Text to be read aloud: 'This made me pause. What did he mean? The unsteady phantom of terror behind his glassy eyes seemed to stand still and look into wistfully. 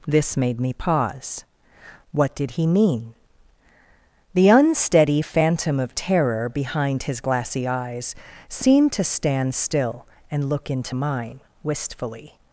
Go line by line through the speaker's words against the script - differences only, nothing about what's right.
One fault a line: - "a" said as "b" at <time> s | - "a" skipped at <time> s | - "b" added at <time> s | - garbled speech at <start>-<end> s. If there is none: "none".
- "mine" added at 10.9 s